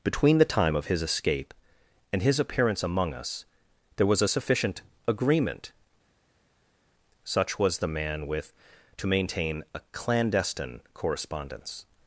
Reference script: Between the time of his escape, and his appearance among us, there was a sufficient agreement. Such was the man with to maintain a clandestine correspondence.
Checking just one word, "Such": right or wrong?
right